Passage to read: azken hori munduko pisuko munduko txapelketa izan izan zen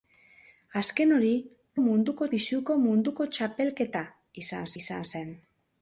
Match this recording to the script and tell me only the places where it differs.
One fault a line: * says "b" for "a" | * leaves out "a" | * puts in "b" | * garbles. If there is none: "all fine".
all fine